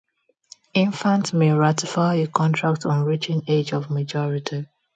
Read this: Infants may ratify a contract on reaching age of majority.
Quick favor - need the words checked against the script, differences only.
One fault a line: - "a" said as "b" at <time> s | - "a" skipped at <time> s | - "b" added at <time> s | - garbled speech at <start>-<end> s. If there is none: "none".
none